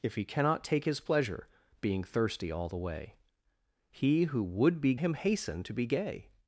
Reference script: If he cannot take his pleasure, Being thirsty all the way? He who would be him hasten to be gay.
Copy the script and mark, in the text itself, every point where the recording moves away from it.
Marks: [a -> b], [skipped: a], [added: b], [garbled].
If he cannot take his pleasure, Being thirsty all the way? He who would be him hasten to be gay.